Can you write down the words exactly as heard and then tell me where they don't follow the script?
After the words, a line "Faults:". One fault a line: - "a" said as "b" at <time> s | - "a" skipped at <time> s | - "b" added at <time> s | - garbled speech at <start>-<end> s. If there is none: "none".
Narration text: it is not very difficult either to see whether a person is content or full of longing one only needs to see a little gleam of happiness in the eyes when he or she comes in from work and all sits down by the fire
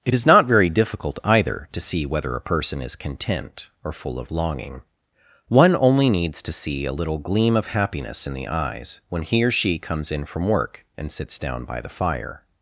it is not very difficult either to see whether a person is content or full of longing one only needs to see a little gleam of happiness in the eyes when he or she comes in from work and sits down by the fire
Faults:
- "all" skipped at 11.1 s